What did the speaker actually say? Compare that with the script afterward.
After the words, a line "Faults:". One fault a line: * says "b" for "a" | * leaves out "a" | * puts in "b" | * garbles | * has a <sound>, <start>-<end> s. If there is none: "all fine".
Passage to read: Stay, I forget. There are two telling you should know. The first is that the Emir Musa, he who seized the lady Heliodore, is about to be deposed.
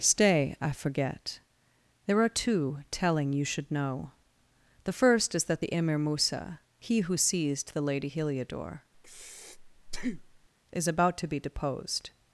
Stay, I forget. There are two telling you should know. The first is that the Emir Musa, he who seized the lady Heliodore, is about to be deposed.
Faults:
* has a breath, 8.9-10.5 s